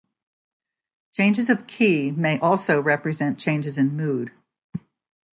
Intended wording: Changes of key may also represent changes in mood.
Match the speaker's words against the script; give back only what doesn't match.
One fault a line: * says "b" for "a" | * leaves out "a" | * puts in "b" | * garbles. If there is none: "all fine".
all fine